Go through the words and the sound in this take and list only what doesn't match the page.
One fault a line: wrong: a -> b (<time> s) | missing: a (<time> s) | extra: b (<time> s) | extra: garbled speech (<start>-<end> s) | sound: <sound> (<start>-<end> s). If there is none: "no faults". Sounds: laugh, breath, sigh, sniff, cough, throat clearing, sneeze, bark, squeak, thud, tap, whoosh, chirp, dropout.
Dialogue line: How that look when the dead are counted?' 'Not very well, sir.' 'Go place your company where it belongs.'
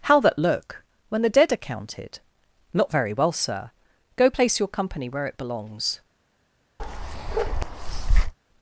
sound: bark (6.8-8.3 s)